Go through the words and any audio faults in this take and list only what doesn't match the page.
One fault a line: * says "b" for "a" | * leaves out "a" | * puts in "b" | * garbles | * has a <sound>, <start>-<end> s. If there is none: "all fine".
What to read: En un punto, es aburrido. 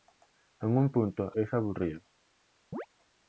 * has a chirp, 2.7-2.9 s